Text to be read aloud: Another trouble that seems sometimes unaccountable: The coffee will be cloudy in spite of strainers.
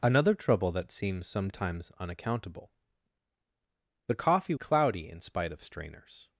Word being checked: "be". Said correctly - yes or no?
no